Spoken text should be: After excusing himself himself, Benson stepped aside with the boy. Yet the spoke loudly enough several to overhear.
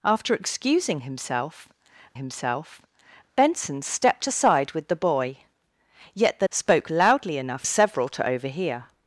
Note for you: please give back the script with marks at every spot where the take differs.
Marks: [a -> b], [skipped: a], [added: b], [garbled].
After excusing himself himself, Benson stepped aside with the boy. Yet the spoke loudly enough several to overhear.